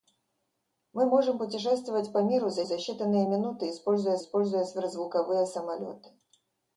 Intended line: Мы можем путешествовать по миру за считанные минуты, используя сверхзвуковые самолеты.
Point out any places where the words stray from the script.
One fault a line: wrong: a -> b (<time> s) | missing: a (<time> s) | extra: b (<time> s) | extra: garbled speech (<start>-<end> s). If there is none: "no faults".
extra: за (2.6 s)
extra: используя (4.2 s)